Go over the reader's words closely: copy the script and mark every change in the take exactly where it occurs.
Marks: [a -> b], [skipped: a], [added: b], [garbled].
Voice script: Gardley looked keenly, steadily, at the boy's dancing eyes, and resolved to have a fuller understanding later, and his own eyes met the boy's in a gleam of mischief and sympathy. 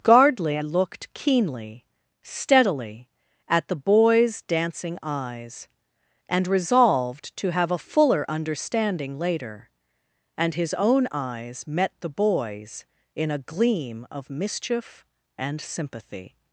Gardley looked keenly, steadily, at the boy's dancing eyes, and resolved to have a fuller understanding later, and his own eyes met the boy's in a gleam of mischief and sympathy.